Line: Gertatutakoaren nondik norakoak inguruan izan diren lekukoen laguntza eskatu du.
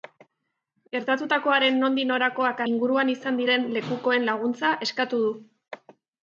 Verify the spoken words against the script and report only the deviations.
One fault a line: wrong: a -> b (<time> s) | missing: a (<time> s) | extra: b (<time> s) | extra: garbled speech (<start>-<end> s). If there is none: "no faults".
no faults